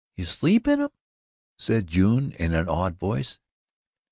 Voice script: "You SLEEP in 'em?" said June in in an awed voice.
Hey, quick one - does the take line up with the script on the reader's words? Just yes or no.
no